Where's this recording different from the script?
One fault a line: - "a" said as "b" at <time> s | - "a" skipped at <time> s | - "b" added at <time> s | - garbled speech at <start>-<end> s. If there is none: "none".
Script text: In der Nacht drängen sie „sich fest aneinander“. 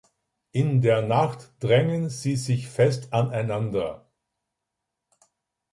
none